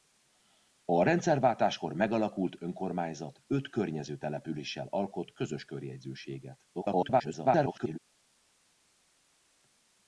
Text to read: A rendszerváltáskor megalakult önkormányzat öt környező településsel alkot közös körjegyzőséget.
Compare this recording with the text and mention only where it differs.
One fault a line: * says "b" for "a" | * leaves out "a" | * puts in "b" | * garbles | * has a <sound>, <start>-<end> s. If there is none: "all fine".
* garbles